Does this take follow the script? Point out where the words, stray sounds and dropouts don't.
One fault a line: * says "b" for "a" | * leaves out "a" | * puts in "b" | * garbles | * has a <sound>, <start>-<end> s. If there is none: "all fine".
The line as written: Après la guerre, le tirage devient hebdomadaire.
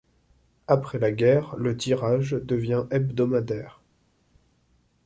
all fine